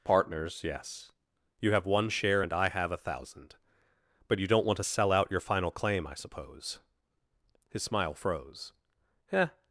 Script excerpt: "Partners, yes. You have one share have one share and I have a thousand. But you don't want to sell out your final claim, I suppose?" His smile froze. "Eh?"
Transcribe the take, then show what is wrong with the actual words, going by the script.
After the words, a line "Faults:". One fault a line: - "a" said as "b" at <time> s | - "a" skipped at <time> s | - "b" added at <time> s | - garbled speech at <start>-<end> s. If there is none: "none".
"Partners, yes. You have one share and I have a thousand. But you don't want to sell out your final claim, I suppose?" His smile froze. "Eh?"
Faults:
- "have one share" skipped at 2.4 s